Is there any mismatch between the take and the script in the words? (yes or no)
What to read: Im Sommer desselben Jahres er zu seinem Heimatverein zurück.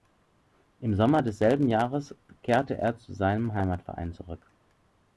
yes